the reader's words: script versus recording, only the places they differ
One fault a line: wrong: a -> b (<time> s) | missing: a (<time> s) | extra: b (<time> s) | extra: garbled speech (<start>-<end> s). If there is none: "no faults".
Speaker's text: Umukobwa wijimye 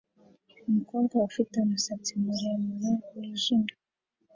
extra: ufite umusatsi muremure (1.3 s)